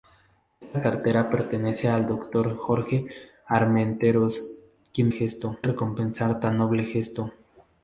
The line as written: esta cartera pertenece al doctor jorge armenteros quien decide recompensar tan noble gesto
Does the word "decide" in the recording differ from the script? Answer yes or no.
yes